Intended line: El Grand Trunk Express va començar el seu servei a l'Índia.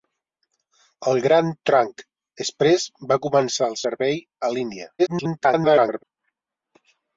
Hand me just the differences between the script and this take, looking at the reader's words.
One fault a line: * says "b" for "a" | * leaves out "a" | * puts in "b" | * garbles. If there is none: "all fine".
* leaves out "seu"
* garbles